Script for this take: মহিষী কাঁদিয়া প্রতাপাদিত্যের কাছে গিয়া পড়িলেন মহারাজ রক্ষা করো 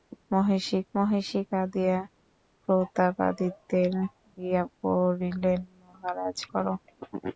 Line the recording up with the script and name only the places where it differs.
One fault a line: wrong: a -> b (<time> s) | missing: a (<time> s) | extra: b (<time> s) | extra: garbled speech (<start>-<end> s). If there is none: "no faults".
extra: মহিষী (0.9 s)
missing: কাছে (3.9 s)
missing: রক্ষা (6.4 s)